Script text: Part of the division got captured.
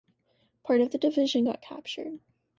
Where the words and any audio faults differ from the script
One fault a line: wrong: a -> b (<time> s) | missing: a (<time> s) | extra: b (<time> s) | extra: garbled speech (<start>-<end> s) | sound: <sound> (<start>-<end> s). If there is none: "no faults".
no faults